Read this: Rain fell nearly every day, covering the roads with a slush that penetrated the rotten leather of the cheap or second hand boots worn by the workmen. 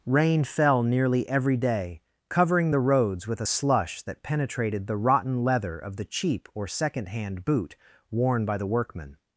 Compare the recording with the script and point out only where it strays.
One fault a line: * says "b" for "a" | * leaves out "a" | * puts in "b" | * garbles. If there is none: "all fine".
* says "boot" for "boots"